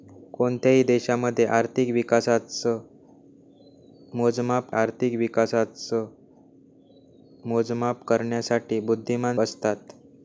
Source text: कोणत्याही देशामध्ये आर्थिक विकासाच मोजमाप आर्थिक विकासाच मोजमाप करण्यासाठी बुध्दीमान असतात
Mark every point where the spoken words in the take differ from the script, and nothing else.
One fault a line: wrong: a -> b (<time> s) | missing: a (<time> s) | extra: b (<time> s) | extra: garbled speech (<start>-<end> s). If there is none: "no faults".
no faults